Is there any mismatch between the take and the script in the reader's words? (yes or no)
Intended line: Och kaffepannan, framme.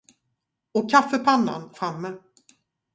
no